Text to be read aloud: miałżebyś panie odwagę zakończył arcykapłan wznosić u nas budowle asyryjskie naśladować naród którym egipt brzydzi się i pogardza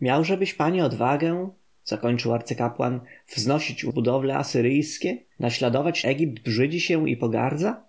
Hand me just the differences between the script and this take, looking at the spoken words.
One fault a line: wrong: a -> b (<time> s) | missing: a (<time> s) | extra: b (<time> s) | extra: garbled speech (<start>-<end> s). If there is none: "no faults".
missing: nas (3.9 s)
missing: naród którym (6.0 s)